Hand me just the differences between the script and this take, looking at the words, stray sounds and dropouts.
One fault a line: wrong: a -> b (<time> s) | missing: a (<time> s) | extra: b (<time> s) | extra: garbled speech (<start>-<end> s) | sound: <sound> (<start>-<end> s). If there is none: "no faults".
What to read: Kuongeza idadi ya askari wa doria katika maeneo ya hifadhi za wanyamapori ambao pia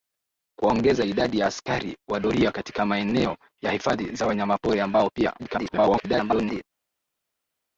extra: garbled speech (5.4-6.6 s)